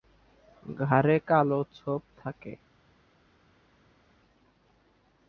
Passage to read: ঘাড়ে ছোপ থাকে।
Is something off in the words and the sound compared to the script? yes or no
yes